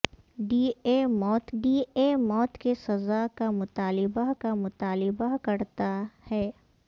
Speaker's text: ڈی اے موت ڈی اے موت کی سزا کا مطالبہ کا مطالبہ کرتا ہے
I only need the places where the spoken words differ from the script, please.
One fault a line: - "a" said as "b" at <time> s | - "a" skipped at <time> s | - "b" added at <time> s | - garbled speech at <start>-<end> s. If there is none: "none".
none